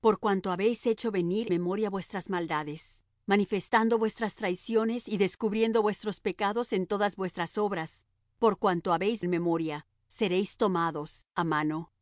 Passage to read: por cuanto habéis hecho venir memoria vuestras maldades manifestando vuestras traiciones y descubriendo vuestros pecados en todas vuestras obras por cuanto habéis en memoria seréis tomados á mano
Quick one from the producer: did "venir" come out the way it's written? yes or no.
yes